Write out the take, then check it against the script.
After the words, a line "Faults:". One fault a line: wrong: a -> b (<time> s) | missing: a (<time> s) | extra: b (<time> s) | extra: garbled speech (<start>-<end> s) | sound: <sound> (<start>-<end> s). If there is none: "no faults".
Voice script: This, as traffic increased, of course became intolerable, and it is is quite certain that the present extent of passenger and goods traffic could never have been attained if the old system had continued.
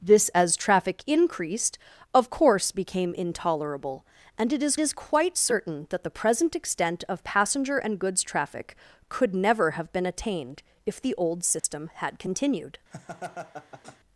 This, as traffic increased, of course became intolerable, and it is is quite certain that the present extent of passenger and goods traffic could never have been attained if the old system had continued.
Faults:
sound: dropout (11.6-11.6 s)
sound: laugh (12.9-14.0 s)